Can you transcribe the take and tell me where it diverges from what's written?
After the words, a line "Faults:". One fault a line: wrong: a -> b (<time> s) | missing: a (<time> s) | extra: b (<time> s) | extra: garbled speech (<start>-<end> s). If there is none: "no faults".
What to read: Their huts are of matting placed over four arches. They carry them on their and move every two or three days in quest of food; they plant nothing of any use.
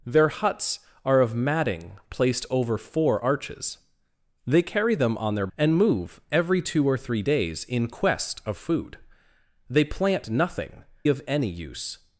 Their huts are of matting placed over four arches. They carry them on their and move every two or three days in quest of food; they plant nothing of any use.
Faults:
no faults